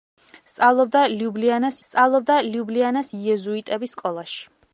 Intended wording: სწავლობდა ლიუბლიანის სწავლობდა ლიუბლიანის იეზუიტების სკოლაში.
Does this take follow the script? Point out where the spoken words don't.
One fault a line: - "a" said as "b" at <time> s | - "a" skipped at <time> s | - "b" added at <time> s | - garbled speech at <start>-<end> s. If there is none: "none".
none